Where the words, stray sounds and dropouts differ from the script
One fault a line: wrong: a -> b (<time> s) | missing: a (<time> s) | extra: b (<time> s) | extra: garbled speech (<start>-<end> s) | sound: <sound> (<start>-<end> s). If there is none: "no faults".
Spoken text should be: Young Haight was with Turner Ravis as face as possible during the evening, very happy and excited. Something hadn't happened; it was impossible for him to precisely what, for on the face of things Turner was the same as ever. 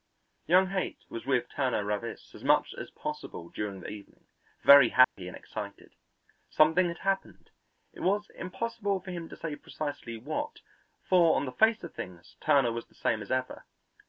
wrong: face -> much (2.4 s)
sound: dropout (5.0-5.2 s)
wrong: hadn't -> had (6.9 s)
extra: say (9.3 s)